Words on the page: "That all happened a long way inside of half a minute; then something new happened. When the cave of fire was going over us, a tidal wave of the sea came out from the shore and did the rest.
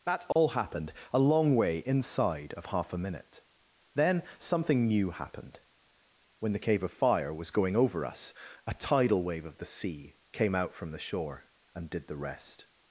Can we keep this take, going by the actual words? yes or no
yes